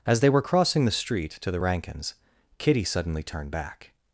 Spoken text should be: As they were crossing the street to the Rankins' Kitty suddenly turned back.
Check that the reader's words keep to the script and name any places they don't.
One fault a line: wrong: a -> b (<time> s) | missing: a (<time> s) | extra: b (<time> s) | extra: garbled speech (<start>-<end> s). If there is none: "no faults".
no faults